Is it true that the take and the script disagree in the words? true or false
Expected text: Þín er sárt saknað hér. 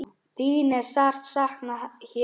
false